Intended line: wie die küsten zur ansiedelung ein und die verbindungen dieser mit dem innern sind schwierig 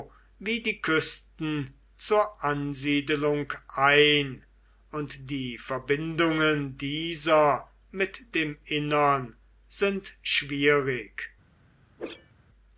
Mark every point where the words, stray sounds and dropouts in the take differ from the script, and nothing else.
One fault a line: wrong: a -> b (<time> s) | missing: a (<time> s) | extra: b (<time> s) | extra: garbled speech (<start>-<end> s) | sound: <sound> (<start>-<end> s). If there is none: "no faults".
sound: whoosh (12.0-12.3 s)